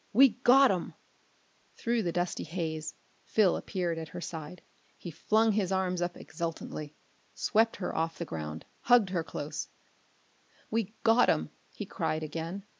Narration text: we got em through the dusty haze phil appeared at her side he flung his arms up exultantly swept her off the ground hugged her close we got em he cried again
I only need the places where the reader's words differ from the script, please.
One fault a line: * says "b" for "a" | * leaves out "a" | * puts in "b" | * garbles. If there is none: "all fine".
all fine